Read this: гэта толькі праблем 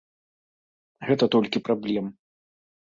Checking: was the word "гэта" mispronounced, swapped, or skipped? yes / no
no